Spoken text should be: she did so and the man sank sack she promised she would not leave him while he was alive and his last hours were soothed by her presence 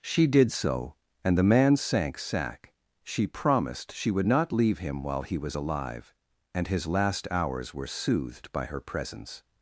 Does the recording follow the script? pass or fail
pass